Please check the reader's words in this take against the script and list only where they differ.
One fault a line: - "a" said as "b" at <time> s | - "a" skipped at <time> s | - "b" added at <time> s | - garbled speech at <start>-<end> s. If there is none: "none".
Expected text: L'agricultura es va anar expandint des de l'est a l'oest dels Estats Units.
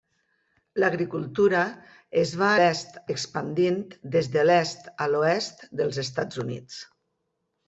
- "anar" said as "l'est" at 2.6 s